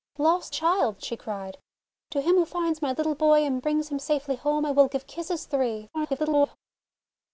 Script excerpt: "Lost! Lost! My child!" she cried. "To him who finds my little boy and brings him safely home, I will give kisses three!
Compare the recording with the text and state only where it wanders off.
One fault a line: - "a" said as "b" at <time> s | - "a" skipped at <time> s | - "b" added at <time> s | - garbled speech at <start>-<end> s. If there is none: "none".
- "Lost My" skipped at 0.6 s
- garbled speech at 5.9-6.6 s